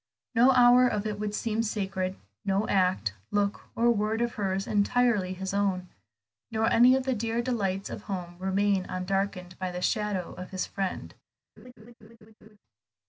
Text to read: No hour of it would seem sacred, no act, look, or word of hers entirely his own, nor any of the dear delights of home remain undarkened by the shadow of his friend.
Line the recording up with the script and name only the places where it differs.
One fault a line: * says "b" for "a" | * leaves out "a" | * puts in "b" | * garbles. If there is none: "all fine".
all fine